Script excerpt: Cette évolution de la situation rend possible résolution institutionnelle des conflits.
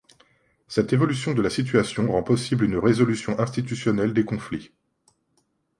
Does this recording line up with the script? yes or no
no